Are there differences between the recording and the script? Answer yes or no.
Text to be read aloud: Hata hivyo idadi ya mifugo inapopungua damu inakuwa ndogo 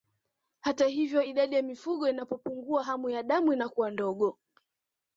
yes